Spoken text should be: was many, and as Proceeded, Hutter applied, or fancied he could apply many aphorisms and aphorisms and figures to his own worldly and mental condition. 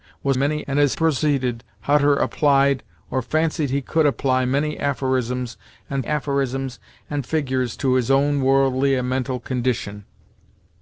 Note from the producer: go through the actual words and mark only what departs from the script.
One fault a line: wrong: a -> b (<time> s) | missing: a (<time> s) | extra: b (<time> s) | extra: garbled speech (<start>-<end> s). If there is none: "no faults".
no faults